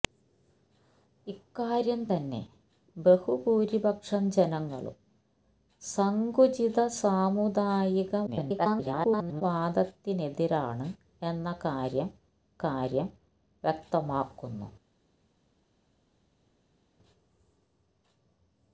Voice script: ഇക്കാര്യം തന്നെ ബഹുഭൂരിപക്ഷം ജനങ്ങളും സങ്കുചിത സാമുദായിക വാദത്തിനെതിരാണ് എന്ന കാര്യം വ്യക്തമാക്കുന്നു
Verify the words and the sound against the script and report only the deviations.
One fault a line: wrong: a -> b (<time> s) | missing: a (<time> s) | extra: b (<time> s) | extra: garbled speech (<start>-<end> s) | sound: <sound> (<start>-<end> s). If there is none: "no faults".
extra: garbled speech (8.3-9.4 s)
extra: കാര്യം (12.6 s)